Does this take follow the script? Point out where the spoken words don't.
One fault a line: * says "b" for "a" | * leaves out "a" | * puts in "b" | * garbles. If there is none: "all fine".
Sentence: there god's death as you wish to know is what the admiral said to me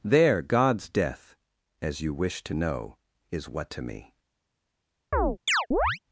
* leaves out "the admiral said"